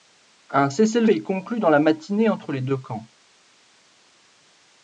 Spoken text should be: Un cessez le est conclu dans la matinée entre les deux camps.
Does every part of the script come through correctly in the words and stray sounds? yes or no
yes